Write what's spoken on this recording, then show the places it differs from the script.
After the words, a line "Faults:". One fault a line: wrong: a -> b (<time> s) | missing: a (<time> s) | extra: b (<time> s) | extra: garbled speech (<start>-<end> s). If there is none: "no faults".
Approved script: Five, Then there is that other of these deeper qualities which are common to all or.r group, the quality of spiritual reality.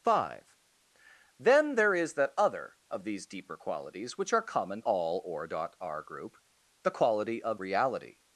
Five, Then there is that other of these deeper qualities which are common all or.r group, the quality of reality.
Faults:
missing: to (4.8 s)
missing: spiritual (7.6 s)